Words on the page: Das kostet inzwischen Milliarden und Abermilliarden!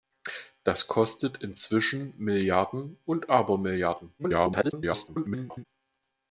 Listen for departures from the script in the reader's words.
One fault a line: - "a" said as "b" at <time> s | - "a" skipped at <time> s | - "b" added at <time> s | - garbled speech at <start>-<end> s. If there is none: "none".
- garbled speech at 4.2-5.7 s